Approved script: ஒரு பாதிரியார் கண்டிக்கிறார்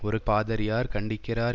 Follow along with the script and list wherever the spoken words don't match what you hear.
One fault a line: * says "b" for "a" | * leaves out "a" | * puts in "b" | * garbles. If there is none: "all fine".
all fine